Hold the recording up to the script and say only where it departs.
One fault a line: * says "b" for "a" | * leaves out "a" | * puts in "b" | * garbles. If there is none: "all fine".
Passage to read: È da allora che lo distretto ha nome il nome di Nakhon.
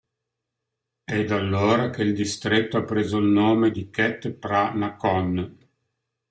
* says "il" for "lo"
* says "preso" for "nome"
* puts in "khet Phra"